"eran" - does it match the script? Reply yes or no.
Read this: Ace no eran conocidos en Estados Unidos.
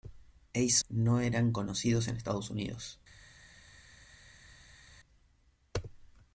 yes